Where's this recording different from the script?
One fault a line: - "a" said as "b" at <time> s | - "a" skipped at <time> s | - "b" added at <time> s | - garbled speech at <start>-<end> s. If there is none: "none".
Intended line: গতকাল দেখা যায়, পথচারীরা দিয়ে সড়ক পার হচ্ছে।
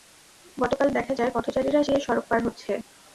none